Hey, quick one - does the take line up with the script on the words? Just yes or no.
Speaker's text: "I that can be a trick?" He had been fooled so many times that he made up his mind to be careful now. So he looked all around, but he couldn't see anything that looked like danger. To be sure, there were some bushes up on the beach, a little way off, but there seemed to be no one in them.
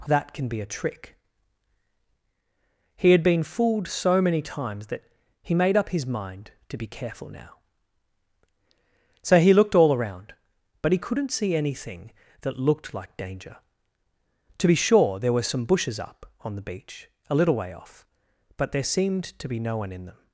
yes